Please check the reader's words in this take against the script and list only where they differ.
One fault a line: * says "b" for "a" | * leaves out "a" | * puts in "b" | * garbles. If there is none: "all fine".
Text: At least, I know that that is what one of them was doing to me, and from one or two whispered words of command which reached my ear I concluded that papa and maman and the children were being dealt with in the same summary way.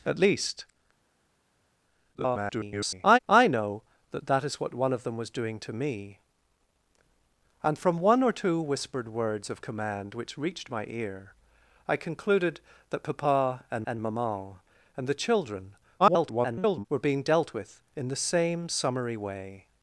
* garbles
* puts in "and"
* garbles